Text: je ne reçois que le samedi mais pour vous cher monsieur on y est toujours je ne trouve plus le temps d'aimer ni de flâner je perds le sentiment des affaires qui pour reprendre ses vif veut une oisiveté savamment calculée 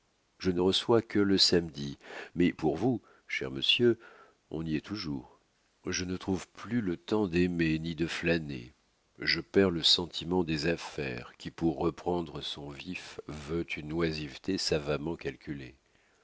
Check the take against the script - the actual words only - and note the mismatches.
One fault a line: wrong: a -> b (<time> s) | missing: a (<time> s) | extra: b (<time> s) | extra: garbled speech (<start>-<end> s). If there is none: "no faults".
wrong: ses -> son (12.4 s)